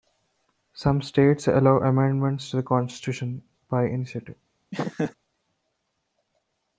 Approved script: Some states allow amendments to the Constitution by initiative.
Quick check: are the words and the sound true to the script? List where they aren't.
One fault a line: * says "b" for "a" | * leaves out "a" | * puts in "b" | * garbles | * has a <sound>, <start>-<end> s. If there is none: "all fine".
* has a laugh, 4.7-5.1 s